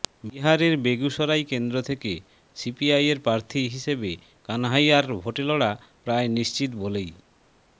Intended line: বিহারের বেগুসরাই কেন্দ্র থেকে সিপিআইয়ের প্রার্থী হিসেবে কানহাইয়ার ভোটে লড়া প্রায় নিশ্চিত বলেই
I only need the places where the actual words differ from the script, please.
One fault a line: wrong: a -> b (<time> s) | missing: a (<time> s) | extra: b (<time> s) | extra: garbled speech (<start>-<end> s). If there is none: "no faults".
no faults